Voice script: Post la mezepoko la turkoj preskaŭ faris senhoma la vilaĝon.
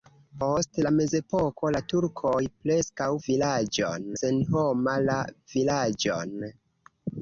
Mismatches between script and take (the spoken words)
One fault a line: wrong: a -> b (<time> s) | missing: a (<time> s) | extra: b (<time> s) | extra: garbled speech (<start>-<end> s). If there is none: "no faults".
wrong: faris -> vilaĝon (3.3 s)